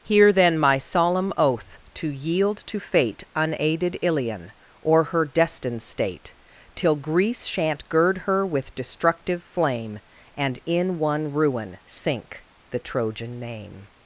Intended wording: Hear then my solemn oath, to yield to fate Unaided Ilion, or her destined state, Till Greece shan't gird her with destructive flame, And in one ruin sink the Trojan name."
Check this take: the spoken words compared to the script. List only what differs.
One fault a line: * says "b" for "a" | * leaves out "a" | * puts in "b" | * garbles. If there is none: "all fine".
all fine